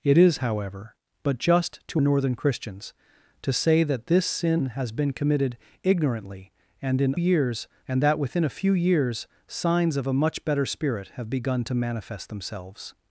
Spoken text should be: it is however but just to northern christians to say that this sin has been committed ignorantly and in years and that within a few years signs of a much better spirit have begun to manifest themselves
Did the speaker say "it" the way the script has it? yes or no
yes